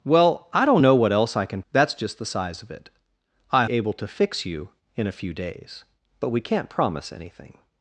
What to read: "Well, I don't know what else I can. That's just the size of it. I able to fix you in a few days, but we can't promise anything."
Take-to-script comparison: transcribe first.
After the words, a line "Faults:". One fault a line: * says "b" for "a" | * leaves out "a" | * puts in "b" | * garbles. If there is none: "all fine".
"Well, I don't know what else I can. That's just the size of it. I able to fix you in a few days, but we can't promise anything."
Faults:
all fine